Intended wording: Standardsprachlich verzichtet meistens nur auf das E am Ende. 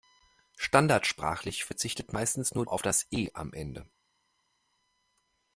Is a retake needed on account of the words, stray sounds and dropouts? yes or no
no